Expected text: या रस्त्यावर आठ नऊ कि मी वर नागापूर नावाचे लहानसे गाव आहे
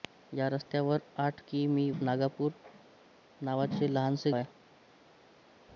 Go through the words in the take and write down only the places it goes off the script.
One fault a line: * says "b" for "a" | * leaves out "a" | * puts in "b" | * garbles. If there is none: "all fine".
* leaves out "नऊ"
* leaves out "वर"
* leaves out "गाव"